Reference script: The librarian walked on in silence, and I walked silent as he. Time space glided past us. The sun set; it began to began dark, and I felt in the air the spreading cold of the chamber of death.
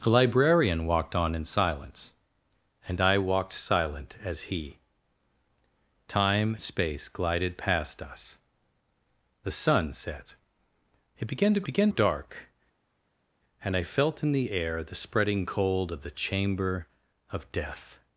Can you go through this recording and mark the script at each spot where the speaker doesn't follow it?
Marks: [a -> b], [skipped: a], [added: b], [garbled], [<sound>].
The librarian walked on in silence, and I walked silent as he. Time space glided past us. The sun set; it began to began dark, and I felt in the air the spreading cold of the chamber of death.